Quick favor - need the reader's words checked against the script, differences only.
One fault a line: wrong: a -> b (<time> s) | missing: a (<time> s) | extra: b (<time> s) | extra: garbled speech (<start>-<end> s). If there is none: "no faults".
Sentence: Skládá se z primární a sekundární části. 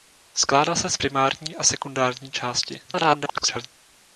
extra: garbled speech (2.9-3.7 s)